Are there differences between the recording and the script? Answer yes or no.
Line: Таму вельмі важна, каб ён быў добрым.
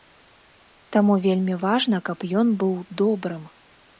no